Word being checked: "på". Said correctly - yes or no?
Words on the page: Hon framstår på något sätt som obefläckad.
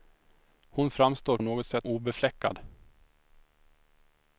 no